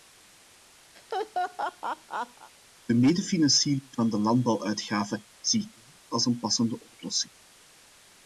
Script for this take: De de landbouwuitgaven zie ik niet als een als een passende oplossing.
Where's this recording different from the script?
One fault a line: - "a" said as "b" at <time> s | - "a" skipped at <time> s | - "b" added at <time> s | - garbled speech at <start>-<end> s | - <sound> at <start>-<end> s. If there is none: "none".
- laugh at 0.9-2.5 s
- "medefinanciering van" added at 2.9 s
- "als een" skipped at 6.4 s